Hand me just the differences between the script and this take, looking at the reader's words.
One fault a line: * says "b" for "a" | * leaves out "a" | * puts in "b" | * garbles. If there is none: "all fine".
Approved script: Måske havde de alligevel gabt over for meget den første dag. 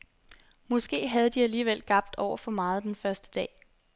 all fine